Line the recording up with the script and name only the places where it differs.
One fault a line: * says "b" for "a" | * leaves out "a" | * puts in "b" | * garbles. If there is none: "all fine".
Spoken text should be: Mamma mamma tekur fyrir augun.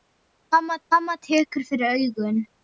all fine